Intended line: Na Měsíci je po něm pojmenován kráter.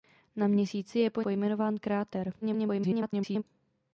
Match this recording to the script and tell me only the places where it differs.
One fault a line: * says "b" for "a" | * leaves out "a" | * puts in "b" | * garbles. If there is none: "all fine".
* leaves out "něm"
* garbles